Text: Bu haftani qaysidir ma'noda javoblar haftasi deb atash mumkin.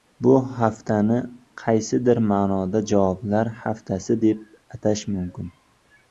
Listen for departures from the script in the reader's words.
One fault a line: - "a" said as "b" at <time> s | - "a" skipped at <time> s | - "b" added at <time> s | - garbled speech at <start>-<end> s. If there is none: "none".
none